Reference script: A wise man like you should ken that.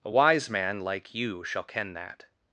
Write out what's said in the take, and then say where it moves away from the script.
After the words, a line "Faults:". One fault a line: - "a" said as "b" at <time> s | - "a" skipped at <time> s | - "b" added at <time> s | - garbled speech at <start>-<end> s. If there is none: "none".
A wise man like you shall ken that.
Faults:
- "should" said as "shall" at 1.4 s